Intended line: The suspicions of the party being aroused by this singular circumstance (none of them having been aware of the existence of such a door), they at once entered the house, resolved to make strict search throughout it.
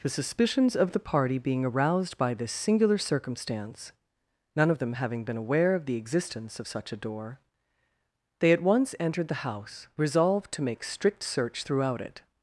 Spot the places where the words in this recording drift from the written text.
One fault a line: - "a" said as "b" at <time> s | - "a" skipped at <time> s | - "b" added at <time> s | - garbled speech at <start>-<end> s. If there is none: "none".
none